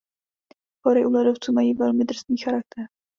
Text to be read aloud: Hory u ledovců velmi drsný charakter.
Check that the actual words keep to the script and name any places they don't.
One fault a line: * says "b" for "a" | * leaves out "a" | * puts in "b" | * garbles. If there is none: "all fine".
* puts in "mají"